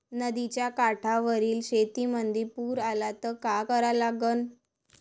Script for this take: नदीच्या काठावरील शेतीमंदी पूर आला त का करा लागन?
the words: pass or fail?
pass